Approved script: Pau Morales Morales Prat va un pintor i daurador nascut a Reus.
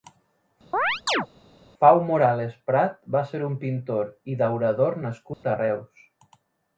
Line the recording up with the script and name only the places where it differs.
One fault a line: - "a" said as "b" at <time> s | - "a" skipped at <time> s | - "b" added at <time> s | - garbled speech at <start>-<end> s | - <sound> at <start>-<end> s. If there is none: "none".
- chirp at 0.7-1.3 s
- "Morales" skipped at 2.6 s
- "ser" added at 3.3 s
- dropout at 5.3-5.4 s